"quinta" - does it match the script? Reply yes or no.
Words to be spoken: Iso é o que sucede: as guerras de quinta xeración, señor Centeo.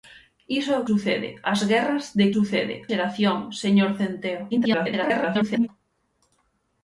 no